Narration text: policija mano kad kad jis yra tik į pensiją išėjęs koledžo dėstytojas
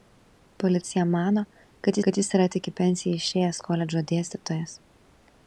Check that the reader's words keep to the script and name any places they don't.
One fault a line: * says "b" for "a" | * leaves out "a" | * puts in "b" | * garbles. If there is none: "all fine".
all fine